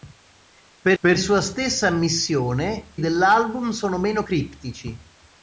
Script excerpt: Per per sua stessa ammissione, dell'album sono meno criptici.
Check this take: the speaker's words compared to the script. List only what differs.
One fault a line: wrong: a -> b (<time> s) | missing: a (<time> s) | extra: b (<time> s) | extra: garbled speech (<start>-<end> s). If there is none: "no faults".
no faults